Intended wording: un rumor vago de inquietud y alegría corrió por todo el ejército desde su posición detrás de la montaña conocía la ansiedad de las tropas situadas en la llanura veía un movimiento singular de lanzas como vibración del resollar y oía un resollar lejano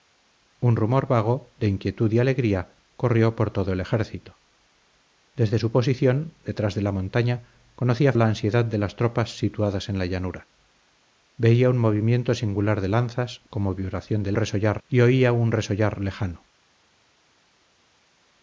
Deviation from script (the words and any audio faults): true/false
false